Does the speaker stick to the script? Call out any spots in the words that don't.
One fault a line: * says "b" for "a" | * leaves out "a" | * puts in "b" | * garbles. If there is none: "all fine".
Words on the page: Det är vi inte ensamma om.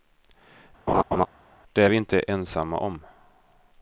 all fine